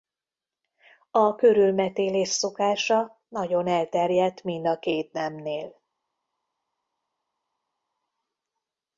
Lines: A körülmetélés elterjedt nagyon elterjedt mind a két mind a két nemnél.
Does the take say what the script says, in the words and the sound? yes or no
no